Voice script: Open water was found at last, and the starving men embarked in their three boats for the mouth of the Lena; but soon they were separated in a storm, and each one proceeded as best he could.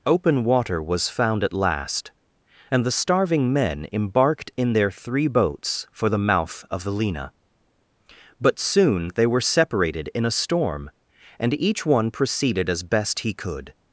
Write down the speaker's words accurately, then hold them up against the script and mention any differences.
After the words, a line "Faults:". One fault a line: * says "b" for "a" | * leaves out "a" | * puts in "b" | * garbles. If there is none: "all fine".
Open water was found at last, and the starving men embarked in their three boats for the mouth of the Lena; but soon they were separated in a storm, and each one proceeded as best he could.
Faults:
all fine